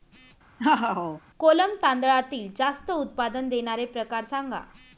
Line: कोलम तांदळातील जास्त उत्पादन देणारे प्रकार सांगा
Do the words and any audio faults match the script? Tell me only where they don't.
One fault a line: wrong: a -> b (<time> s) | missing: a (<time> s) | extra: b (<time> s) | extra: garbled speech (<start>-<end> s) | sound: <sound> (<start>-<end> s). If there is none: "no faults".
sound: laugh (0.6-1.2 s)